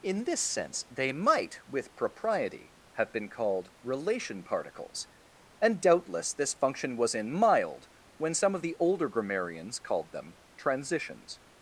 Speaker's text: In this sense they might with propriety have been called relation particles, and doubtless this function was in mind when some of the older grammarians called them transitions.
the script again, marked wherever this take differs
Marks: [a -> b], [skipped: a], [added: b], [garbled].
In this sense they might with propriety have been called relation particles, and doubtless this function was in [mind -> mild] when some of the older grammarians called them transitions.